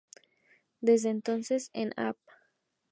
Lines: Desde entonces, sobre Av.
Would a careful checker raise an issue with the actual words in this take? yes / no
yes